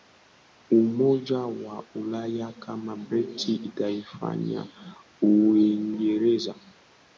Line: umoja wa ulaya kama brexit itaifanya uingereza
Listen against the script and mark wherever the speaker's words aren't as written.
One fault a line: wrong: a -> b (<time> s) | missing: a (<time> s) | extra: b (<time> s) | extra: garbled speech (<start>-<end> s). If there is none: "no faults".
no faults